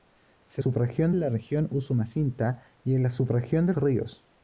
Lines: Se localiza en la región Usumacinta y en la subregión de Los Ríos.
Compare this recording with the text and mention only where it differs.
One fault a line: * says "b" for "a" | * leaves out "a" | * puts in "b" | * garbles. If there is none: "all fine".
* says "subregión" for "localiza"
* leaves out "Los"